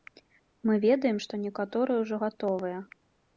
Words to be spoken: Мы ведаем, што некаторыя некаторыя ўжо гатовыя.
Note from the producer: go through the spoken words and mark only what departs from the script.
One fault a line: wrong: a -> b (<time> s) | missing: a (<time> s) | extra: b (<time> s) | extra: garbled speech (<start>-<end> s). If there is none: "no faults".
missing: некаторыя (2.0 s)